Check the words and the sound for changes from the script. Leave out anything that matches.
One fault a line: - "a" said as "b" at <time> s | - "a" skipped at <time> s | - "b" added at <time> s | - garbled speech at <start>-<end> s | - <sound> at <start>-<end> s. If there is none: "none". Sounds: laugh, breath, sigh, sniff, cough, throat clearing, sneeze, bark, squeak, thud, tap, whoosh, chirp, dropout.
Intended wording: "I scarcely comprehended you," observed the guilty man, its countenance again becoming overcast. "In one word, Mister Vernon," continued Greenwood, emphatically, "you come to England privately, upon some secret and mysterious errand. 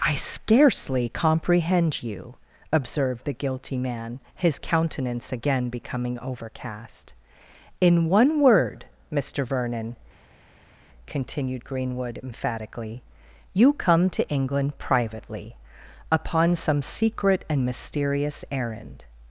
- "comprehended" said as "comprehend" at 1.1 s
- "its" said as "his" at 4.3 s